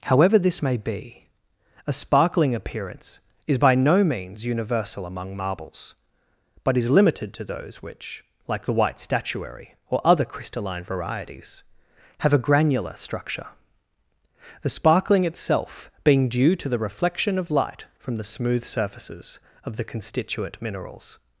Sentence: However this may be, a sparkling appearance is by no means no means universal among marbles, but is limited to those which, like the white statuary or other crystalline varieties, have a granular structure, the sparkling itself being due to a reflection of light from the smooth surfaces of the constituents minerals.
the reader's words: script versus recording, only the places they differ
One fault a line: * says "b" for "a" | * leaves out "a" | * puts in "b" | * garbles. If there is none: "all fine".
* leaves out "no means"
* says "the" for "a"
* says "constituent" for "constituents"